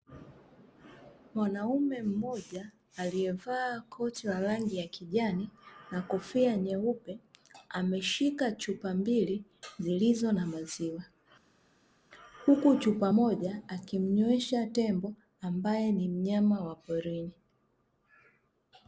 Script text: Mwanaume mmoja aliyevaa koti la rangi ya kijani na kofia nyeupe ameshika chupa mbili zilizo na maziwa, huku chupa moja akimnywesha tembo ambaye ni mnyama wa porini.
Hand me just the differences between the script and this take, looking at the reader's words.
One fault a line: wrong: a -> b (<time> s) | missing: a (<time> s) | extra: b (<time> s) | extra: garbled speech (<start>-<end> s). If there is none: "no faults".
no faults